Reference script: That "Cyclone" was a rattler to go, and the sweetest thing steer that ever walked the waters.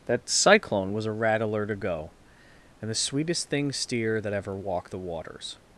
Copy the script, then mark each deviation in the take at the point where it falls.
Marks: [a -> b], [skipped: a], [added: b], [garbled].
That "Cyclone" was a rattler to go, and the sweetest thing steer that ever walked the waters.